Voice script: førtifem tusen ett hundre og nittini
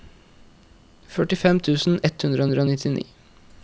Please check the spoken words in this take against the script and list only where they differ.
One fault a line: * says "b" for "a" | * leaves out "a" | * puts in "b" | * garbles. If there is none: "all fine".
* puts in "hundre"